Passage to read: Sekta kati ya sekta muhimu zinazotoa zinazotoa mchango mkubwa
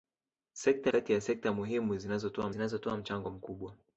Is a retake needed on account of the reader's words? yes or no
no